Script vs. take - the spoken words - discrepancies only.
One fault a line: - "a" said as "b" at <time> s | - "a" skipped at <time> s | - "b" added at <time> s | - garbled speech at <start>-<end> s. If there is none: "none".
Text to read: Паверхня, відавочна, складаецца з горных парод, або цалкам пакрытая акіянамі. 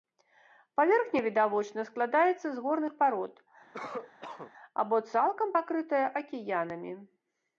none